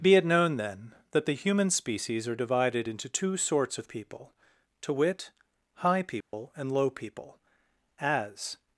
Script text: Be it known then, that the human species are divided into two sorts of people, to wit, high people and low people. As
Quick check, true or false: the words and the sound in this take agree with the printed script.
false